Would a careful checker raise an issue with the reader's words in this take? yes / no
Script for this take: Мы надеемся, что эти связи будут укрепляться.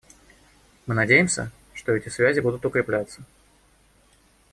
no